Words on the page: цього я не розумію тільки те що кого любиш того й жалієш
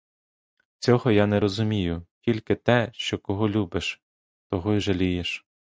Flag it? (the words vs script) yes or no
no